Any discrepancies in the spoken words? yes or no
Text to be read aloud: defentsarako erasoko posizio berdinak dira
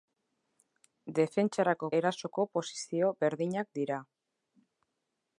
no